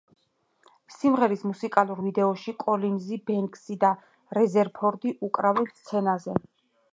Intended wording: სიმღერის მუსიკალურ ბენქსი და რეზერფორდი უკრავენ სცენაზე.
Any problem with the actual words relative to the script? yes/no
yes